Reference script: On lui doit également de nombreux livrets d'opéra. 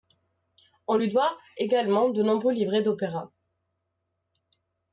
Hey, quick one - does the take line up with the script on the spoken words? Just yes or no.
yes